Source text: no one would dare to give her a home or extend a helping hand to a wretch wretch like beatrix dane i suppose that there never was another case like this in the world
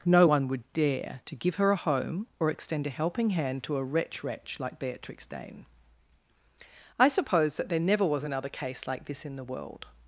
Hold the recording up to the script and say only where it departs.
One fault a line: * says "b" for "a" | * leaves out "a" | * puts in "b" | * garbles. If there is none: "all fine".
all fine